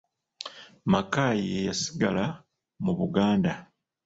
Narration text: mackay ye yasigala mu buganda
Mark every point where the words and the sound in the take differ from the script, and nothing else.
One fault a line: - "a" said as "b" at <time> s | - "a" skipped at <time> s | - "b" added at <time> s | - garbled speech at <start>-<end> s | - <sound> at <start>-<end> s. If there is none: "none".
none